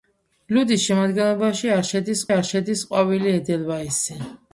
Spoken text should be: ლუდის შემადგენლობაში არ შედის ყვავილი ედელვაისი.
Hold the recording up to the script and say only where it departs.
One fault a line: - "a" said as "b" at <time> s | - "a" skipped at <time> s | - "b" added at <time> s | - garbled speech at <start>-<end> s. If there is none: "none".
- "არ შედის" added at 2.3 s